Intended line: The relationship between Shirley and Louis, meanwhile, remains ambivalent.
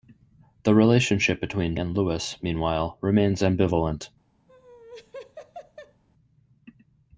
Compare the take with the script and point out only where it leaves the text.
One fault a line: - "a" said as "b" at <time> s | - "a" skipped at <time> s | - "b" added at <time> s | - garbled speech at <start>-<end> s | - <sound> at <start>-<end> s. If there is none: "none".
- "Shirley" skipped at 1.8 s
- laugh at 4.5-6.0 s